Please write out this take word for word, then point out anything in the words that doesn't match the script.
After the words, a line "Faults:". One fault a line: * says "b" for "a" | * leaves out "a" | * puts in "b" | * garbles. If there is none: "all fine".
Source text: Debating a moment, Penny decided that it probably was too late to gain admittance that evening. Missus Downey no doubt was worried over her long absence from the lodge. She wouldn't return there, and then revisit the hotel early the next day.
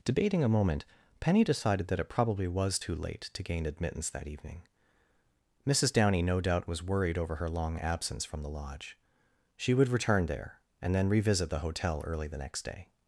Debating a moment, Penny decided that it probably was too late to gain admittance that evening. Missus Downey no doubt was worried over her long absence from the lodge. She would return there, and then revisit the hotel early the next day.
Faults:
* says "would" for "wouldn't"